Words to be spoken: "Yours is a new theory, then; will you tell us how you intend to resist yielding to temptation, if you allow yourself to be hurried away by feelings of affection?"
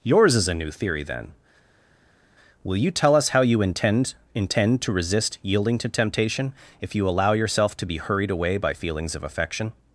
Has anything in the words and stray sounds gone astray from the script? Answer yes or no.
yes